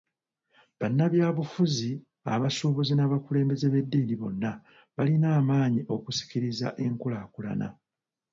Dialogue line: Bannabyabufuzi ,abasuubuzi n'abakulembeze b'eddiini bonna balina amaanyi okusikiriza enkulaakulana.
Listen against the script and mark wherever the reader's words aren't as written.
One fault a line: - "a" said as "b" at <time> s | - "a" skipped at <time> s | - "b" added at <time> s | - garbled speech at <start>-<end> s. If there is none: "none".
none